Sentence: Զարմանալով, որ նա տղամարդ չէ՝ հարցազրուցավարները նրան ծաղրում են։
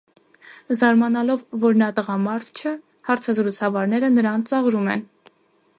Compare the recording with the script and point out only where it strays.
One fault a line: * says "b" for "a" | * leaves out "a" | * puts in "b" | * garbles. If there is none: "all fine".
all fine